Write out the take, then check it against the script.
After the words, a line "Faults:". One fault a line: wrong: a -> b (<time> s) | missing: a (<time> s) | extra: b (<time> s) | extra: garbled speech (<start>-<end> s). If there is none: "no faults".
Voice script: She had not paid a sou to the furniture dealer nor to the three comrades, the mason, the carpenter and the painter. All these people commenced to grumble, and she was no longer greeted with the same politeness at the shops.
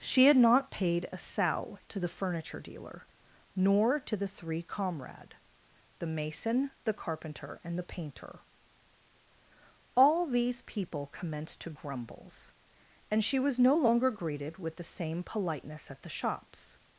She had not paid a sou to the furniture dealer nor to the three comrade, the mason, the carpenter and the painter. All these people commenced to grumbles, and she was no longer greeted with the same politeness at the shops.
Faults:
wrong: comrades -> comrade (4.6 s)
wrong: grumble -> grumbles (11.7 s)